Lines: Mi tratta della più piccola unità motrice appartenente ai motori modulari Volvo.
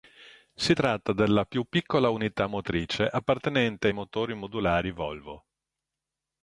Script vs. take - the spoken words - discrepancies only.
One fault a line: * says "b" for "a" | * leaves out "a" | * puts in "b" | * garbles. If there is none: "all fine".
* says "Si" for "Mi"